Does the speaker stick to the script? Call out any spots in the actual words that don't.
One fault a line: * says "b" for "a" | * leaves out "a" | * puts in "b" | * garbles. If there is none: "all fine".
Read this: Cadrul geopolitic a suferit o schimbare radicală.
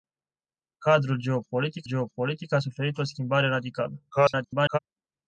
* puts in "geopolitic"
* garbles